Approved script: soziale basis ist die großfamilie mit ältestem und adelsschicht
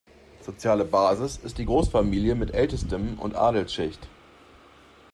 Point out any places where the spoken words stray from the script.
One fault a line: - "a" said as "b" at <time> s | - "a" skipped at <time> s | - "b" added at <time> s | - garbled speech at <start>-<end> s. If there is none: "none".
none